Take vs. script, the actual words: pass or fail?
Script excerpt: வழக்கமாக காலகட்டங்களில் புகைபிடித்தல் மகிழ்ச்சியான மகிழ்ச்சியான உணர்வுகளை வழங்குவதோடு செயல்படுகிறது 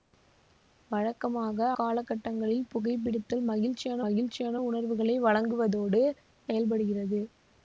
pass